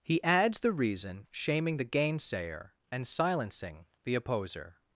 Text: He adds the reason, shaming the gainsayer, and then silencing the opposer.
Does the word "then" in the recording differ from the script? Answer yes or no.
yes